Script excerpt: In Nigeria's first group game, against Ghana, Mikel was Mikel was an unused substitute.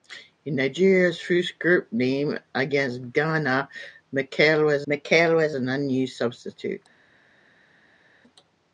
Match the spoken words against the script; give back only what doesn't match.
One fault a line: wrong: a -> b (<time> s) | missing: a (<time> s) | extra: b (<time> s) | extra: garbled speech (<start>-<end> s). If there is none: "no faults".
no faults